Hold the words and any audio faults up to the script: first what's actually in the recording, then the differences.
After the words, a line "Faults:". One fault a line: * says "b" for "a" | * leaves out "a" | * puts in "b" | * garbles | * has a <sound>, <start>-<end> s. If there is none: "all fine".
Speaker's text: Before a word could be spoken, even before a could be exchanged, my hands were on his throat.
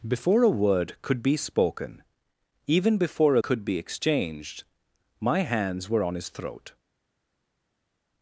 Before a word could be spoken, even before a could be exchanged, my hands were on his throat.
Faults:
all fine